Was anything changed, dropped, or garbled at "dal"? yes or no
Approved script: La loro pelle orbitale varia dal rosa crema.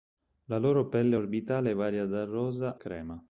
no